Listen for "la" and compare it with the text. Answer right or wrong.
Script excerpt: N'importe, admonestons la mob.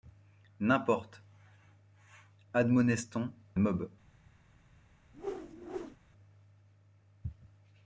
wrong